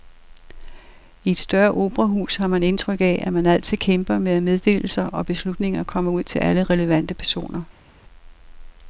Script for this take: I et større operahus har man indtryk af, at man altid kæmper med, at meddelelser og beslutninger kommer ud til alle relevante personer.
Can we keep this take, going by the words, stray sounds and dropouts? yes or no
yes